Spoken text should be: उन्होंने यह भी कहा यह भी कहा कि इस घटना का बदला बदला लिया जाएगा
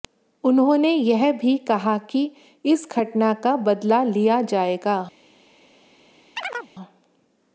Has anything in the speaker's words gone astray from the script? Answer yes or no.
yes